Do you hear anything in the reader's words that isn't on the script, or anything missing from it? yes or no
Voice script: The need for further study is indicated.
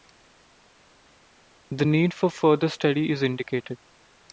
no